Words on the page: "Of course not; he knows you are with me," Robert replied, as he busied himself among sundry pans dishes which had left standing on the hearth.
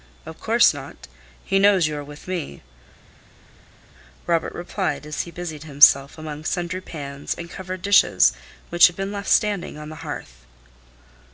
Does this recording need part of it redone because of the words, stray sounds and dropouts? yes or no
yes